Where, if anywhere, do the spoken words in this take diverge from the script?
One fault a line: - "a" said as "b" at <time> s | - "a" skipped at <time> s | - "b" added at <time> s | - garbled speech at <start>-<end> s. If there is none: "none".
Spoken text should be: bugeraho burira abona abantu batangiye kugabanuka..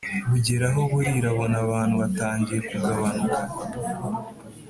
none